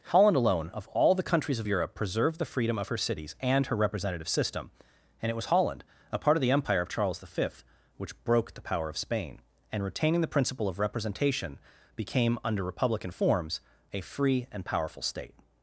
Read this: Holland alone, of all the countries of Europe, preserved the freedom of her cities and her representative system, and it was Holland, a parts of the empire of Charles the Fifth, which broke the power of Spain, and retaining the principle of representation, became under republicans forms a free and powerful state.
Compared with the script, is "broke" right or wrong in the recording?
right